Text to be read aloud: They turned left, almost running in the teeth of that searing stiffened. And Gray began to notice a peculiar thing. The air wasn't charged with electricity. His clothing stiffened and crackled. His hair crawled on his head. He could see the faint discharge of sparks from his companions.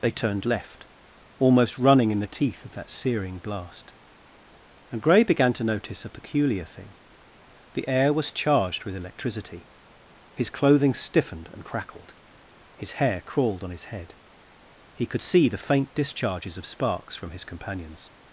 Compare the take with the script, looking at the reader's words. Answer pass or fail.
fail